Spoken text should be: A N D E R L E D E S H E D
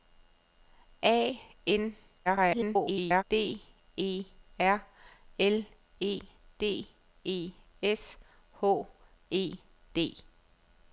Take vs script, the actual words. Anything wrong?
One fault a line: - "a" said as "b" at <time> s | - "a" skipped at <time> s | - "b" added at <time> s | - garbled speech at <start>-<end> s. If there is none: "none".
- garbled speech at 2.3-3.2 s